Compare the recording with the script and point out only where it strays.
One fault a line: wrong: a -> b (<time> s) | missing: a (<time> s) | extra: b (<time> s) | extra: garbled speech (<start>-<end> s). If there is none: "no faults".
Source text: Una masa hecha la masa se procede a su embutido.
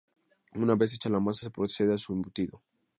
wrong: masa -> vez (0.7 s)